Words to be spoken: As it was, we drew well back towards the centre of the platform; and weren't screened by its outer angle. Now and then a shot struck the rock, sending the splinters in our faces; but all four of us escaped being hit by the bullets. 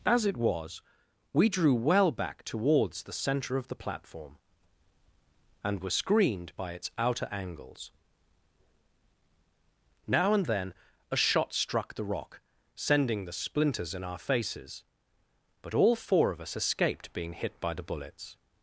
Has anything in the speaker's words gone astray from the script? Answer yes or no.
yes